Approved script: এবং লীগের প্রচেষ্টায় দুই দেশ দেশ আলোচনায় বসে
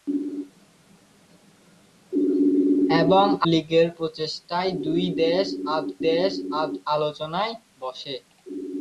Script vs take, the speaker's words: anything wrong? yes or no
no